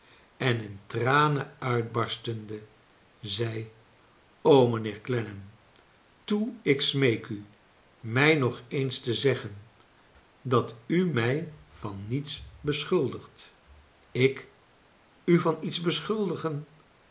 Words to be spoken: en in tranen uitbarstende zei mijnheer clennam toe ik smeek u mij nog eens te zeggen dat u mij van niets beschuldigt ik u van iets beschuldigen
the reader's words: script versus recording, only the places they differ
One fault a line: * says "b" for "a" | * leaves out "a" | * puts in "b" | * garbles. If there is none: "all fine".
all fine